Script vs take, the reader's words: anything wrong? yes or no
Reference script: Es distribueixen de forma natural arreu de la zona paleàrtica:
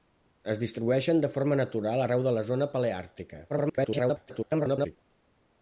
yes